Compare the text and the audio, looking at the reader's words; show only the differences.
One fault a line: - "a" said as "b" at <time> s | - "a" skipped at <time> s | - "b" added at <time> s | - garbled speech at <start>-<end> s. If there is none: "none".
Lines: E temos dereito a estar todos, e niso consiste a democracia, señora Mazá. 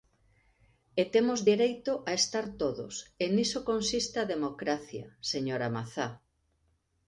none